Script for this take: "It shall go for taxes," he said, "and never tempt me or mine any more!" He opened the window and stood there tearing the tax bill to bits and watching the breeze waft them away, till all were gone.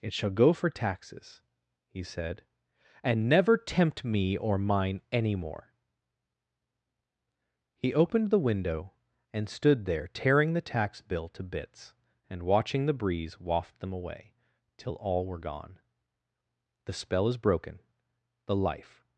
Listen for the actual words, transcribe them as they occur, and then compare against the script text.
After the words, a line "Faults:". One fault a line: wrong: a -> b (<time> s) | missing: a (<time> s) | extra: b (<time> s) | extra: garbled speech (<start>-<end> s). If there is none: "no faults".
"It shall go for taxes," he said, "and never tempt me or mine any more!" He opened the window and stood there tearing the tax bill to bits and watching the breeze waft them away, till all were gone. "The spell is broken, the life
Faults:
extra: The spell is broken the life (16.8 s)